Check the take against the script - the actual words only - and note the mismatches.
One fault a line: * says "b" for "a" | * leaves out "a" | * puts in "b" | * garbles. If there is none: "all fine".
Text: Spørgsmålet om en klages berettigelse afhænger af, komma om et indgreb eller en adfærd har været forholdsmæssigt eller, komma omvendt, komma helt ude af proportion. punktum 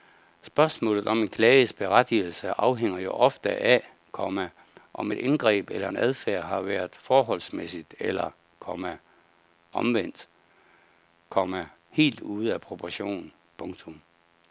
* puts in "jo ofte"